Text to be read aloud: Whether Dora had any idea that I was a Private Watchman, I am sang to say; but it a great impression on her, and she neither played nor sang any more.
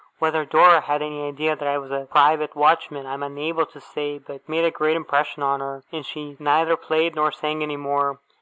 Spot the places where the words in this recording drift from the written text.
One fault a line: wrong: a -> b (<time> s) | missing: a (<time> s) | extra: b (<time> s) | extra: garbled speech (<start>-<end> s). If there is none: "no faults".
wrong: sang -> unable (3.2 s)
extra: made (4.5 s)